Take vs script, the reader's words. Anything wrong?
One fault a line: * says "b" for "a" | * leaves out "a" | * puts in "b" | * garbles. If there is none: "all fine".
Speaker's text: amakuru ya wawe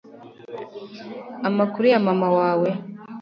* puts in "mama"